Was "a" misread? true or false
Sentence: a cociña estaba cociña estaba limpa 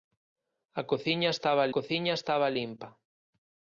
false